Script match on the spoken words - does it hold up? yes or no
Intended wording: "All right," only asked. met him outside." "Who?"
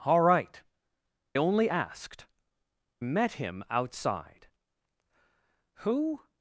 yes